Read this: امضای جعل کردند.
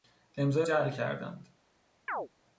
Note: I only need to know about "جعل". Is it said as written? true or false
true